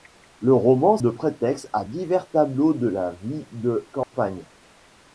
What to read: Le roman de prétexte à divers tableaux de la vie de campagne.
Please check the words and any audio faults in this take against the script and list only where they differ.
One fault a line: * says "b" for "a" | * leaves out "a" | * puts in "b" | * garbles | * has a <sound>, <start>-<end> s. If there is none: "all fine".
* has a dropout, 4.0-4.1 s